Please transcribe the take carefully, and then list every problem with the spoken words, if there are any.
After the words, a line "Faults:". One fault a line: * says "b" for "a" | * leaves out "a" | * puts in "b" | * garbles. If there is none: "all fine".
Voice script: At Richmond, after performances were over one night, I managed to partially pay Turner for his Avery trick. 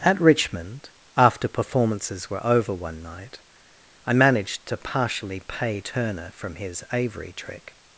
At Richmond, after performances were over one night, I managed to partially pay Turner from his Avery trick.
Faults:
* says "from" for "for"